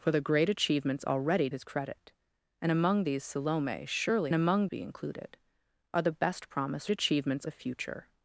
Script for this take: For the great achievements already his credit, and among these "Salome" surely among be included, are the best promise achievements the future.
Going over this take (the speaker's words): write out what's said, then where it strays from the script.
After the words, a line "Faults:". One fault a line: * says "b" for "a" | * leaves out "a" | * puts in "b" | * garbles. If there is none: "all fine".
For the great achievements already his credit, and among these "Salome" surely among be included, are the best promise achievements the future.
Faults:
all fine